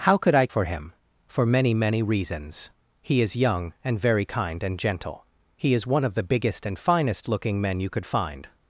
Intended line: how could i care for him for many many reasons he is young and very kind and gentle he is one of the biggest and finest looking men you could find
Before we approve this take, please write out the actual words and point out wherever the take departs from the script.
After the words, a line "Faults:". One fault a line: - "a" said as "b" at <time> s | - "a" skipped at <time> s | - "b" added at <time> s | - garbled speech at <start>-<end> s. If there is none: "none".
how could i for him for many many reasons he is young and very kind and gentle he is one of the biggest and finest looking men you could find
Faults:
- "care" skipped at 0.5 s